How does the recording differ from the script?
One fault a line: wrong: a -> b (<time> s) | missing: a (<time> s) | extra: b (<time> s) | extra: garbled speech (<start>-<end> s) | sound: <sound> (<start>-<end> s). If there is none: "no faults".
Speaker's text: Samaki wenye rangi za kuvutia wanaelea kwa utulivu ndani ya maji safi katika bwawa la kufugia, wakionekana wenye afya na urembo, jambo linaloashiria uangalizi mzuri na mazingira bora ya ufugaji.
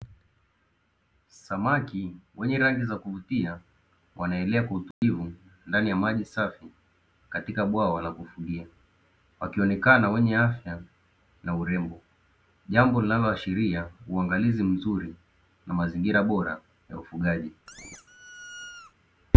sound: dropout (4.9-5.0 s)
sound: squeak (17.7-18.9 s)